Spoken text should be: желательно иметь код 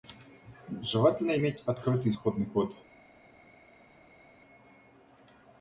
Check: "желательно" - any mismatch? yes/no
no